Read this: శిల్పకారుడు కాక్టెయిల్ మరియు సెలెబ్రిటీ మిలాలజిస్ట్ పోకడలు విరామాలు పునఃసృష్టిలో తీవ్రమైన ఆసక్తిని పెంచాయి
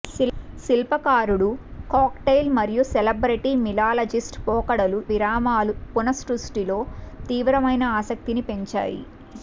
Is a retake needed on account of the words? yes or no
no